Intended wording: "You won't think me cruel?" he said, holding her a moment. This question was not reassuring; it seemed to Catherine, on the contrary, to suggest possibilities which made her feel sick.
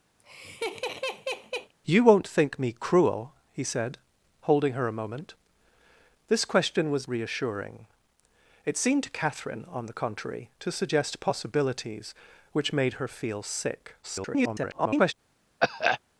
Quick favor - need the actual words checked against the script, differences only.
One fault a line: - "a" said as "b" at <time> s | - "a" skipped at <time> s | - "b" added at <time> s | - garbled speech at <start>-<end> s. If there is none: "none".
- "not" skipped at 7.1 s
- garbled speech at 14.0-15.1 s